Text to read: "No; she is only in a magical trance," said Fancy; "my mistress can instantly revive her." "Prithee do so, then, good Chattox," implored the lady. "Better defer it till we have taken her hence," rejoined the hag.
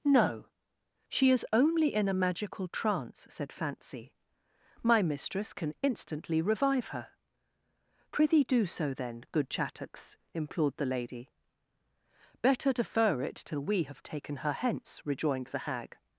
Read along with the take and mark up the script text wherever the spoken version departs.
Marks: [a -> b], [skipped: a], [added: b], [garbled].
"No; she is only in a magical trance," said Fancy; "my mistress can instantly revive her." "Prithee do so, then, good Chattox," implored the lady. "Better defer it till we have taken her hence," rejoined the hag.